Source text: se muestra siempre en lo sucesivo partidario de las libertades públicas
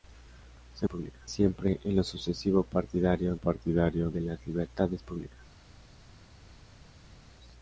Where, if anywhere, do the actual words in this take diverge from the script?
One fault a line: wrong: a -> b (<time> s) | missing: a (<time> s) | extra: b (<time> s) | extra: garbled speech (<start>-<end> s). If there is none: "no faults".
wrong: muestra -> públicas (0.9 s)
extra: partidario (3.3 s)